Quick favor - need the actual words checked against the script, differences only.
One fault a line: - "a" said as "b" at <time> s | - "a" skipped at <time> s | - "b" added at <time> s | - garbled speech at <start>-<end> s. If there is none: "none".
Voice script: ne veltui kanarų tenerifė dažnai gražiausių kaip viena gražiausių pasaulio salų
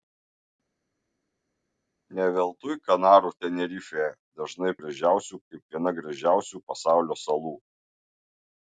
none